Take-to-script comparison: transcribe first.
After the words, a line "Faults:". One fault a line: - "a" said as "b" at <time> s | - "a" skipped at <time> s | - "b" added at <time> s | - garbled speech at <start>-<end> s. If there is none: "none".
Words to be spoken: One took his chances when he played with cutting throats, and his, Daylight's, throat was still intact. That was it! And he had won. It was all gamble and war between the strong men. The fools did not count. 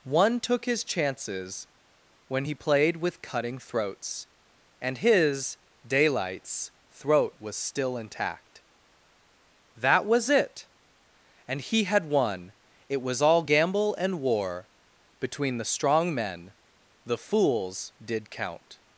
One took his chances when he played with cutting throats, and his, Daylight's, throat was still intact. That was it! And he had won. It was all gamble and war between the strong men. The fools did count.
Faults:
- "not" skipped at 18.3 s